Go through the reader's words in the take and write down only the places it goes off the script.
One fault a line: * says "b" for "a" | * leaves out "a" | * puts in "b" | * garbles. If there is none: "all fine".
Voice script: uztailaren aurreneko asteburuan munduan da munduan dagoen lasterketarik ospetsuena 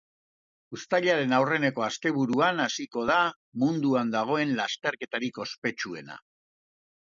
* says "hasiko" for "munduan"